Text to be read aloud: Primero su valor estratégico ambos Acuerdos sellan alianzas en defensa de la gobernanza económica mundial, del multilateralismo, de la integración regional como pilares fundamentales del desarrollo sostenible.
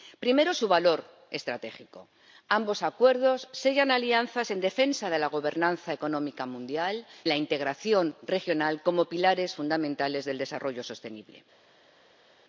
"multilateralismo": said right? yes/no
no